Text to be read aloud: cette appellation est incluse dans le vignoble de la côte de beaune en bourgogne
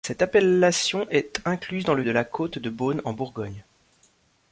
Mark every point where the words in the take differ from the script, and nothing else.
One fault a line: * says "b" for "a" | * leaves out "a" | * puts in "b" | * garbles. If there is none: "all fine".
* leaves out "vignoble"